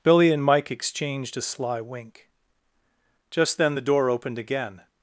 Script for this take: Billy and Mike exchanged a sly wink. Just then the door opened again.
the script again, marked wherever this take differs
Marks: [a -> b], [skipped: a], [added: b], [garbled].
Billy and Mike exchanged a sly wink. Just then the door opened again.